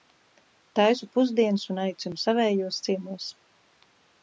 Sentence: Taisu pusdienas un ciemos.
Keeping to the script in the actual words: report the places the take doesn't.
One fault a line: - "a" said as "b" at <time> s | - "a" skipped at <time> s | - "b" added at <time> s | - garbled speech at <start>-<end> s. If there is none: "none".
- "aicinu savējos" added at 1.9 s